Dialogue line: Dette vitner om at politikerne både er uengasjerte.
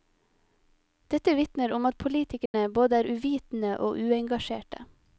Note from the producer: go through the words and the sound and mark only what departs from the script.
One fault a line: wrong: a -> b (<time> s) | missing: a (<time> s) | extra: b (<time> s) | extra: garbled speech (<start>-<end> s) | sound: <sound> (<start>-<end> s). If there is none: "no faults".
sound: dropout (2.5-2.5 s)
extra: uvitende og (3.1 s)